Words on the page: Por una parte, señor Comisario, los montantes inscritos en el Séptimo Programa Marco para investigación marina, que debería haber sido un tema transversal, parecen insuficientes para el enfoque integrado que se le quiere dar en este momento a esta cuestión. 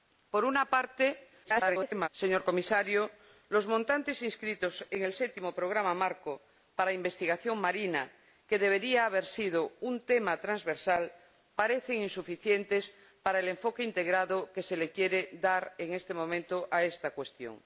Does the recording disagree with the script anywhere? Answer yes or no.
yes